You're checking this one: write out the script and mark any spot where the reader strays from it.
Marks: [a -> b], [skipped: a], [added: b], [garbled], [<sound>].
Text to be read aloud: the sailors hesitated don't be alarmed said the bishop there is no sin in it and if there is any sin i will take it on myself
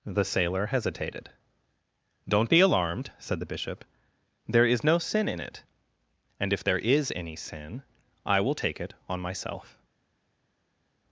the [sailors -> sailor] hesitated don't be alarmed said the bishop there is no sin in it and if there is any sin i will take it on myself